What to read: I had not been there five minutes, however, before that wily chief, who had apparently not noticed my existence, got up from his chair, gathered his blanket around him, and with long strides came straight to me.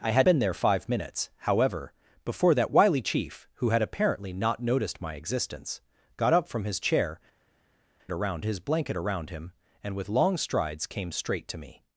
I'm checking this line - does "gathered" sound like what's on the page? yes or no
no